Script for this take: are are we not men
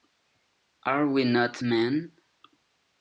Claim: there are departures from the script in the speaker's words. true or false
true